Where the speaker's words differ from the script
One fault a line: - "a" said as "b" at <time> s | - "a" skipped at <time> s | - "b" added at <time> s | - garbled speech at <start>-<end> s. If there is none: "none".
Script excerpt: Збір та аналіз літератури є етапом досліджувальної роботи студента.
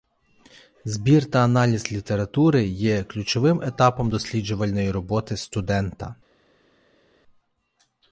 - "ключовим" added at 3.0 s